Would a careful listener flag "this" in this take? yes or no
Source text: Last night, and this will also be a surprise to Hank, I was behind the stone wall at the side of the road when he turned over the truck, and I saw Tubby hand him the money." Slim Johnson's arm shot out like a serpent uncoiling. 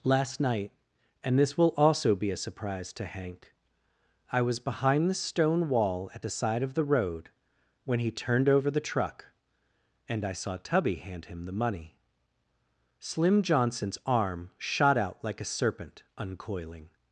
no